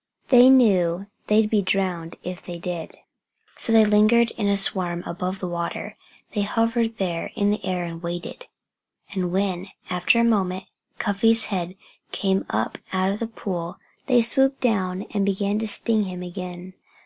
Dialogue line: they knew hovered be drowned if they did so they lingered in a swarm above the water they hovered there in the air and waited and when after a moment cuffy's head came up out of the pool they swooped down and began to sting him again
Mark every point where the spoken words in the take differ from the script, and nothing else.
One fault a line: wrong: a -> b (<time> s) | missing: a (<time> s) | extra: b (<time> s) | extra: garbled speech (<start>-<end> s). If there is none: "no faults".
wrong: hovered -> they'd (1.3 s)